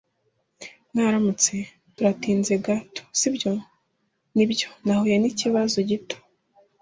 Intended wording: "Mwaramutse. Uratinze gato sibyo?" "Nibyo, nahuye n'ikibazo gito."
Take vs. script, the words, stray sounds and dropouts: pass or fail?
pass